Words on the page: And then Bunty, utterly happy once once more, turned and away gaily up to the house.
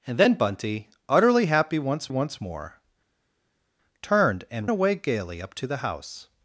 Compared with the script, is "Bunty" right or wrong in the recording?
right